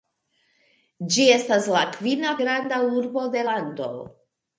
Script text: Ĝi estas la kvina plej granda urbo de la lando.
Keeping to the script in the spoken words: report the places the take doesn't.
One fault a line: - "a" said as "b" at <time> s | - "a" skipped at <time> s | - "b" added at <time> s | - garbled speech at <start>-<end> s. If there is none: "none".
- "plej" skipped at 2.4 s
- "la" skipped at 3.5 s